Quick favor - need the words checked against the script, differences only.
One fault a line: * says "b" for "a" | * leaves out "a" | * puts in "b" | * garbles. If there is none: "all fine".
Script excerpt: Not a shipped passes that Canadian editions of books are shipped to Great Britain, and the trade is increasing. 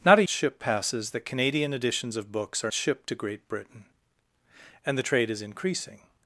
all fine